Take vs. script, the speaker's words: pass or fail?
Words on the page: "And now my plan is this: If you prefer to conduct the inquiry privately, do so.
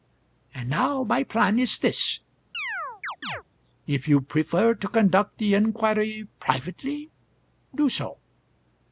pass